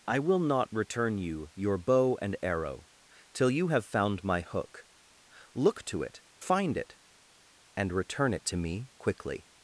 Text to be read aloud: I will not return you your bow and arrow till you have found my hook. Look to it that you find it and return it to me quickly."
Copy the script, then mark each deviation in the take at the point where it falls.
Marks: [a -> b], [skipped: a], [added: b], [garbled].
I will not return you your bow and arrow till you have found my hook. Look to it [skipped: that you] find it and return it to me quickly."